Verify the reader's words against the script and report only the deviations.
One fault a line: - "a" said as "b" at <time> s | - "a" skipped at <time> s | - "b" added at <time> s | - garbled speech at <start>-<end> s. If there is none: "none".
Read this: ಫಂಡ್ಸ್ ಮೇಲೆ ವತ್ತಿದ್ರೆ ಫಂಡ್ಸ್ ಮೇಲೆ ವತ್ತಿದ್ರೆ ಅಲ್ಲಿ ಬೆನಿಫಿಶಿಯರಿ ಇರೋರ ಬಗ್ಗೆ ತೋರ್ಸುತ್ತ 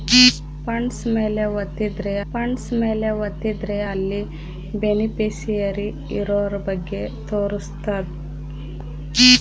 none